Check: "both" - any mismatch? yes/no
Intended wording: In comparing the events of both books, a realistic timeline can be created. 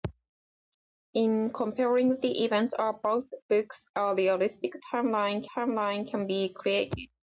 no